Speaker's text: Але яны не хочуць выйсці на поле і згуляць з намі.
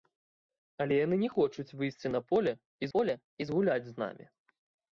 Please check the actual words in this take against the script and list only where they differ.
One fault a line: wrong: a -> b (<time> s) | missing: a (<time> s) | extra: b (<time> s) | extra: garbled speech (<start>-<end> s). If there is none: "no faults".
extra: поле і (3.0 s)